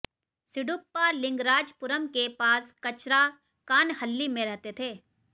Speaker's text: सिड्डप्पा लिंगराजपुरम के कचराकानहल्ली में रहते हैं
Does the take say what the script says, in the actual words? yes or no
no